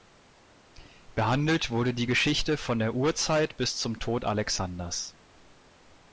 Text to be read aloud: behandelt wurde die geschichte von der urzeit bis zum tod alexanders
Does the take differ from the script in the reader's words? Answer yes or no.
no